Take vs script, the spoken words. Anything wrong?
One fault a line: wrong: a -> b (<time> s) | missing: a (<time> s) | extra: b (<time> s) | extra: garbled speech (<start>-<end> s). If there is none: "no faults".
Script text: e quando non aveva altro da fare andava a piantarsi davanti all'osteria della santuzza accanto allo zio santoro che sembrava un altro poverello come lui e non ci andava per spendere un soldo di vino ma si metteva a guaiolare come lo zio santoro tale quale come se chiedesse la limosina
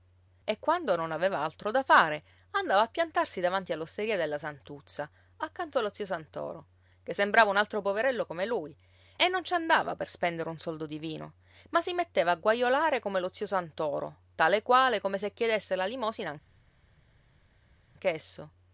no faults